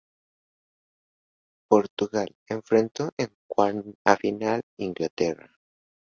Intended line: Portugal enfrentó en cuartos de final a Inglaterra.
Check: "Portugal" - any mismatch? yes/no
no